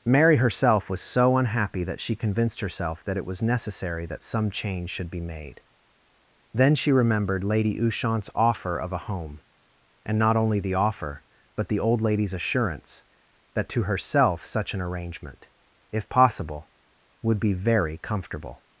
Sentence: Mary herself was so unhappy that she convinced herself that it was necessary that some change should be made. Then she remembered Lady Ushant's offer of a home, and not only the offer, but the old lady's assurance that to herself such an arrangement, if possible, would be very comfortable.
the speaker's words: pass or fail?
pass